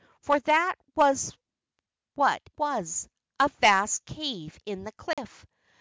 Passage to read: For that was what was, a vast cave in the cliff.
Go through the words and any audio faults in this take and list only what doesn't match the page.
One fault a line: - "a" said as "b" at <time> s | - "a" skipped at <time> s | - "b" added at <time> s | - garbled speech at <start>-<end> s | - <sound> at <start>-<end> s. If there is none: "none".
- dropout at 5.1-5.2 s